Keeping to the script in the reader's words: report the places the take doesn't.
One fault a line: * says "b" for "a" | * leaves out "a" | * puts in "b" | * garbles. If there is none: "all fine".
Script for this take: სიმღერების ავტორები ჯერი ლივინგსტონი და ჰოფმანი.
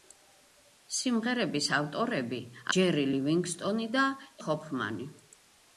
all fine